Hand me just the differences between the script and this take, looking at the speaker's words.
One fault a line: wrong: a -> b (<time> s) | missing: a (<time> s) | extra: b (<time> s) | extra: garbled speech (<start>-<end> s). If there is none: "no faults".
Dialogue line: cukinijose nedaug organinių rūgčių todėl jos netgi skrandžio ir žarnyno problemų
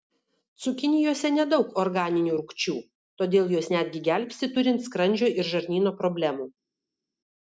extra: gelbsti turint (4.1 s)